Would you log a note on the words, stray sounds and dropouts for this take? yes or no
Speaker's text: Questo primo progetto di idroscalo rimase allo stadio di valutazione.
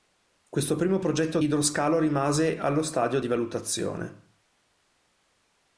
yes